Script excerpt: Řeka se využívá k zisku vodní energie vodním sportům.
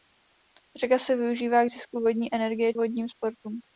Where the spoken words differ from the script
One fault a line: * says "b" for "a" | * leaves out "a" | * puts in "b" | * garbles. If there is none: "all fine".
all fine